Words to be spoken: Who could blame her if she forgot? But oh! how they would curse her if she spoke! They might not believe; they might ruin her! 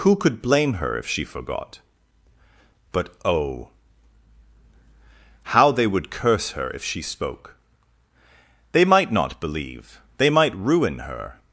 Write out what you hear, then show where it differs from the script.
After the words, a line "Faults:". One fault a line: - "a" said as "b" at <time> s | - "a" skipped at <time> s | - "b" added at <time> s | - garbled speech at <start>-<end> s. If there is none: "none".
Who could blame her if she forgot? But oh! how they would curse her if she spoke! They might not believe; they might ruin her!
Faults:
none